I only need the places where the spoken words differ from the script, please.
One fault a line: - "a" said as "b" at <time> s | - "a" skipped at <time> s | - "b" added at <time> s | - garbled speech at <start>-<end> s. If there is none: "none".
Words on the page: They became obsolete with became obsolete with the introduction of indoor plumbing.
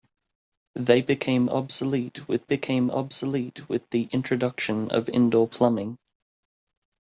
none